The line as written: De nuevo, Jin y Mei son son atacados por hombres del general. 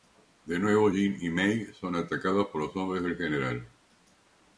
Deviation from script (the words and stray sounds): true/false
true